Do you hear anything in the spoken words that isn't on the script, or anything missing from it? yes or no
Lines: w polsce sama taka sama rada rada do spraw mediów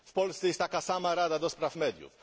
yes